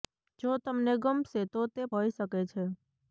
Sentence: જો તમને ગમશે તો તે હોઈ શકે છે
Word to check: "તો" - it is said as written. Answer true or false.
true